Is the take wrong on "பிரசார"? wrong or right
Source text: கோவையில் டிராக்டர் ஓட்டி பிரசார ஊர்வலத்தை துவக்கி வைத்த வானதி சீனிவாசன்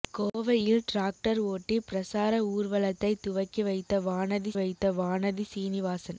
right